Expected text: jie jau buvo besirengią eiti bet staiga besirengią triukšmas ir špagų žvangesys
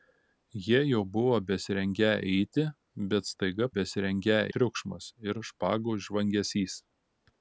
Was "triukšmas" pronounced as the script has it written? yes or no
yes